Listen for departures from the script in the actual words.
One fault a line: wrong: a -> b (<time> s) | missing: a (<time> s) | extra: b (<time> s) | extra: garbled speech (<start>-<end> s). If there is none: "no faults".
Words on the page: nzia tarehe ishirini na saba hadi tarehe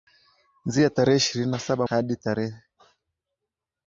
no faults